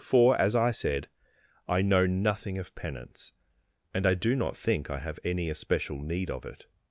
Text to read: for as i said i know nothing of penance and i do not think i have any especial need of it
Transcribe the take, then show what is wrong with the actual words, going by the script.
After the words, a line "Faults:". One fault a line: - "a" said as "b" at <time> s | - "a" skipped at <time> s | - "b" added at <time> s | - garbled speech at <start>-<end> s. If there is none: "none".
for as i said i know nothing of penance and i do not think i have any especial need of it
Faults:
none